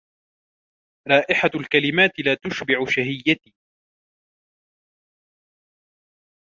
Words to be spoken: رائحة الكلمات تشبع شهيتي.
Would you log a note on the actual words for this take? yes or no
yes